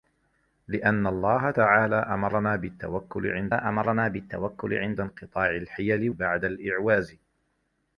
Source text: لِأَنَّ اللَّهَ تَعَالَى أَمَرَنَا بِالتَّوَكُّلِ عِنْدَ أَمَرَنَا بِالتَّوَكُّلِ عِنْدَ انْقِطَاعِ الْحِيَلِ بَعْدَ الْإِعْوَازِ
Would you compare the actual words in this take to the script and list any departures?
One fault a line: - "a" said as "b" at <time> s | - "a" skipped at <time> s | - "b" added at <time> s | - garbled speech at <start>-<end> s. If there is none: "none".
none